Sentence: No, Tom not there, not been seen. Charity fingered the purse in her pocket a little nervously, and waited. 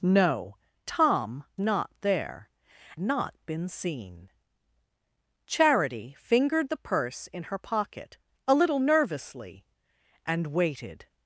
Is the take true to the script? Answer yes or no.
yes